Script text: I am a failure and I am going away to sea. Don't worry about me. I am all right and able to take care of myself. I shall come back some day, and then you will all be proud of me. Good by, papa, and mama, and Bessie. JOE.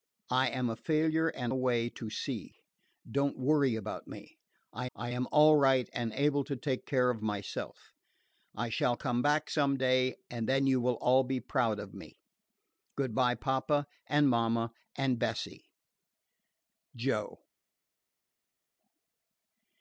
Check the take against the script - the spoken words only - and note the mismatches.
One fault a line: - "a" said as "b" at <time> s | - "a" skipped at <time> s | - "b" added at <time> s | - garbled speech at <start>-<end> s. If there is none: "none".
- "I am going" skipped at 1.5 s
- "I" added at 4.9 s